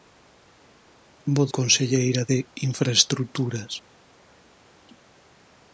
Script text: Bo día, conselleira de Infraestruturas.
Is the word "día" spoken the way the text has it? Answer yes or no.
no